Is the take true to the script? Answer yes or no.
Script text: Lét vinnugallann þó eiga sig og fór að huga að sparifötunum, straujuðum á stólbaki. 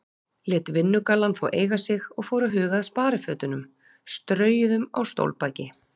yes